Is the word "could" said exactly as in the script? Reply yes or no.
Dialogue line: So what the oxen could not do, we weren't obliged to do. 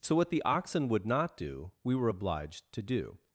no